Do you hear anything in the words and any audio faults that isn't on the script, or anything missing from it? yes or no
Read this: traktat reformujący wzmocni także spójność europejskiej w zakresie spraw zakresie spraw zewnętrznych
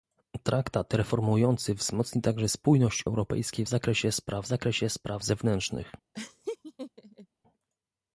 yes